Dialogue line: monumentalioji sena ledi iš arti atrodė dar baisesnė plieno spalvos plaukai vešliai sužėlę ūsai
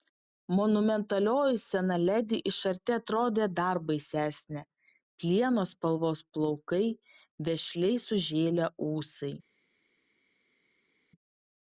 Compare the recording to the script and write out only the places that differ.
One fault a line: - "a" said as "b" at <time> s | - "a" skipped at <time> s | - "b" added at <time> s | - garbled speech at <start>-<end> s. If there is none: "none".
none